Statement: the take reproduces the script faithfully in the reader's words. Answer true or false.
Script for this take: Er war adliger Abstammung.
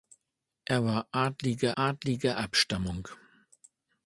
false